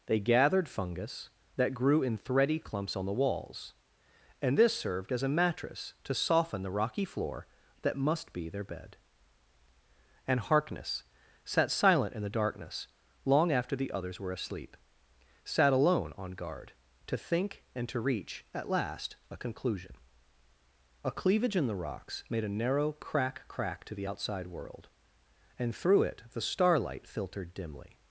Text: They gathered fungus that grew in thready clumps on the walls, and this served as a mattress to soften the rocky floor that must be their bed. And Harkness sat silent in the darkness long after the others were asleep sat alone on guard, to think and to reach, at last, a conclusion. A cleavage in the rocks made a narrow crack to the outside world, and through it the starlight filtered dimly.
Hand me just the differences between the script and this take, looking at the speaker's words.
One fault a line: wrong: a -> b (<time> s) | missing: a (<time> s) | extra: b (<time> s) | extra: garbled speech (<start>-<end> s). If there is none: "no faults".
extra: crack (23.5 s)